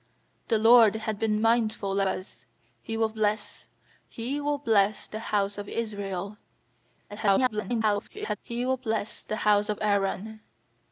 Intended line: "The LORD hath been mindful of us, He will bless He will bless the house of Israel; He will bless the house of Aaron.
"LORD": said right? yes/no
yes